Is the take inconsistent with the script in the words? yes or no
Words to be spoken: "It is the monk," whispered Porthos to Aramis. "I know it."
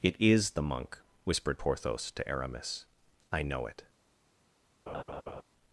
no